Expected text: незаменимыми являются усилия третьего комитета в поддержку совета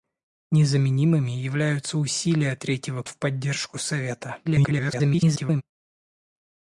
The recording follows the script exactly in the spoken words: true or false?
false